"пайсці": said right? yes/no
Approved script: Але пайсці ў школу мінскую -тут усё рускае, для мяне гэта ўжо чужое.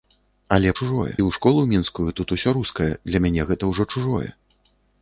no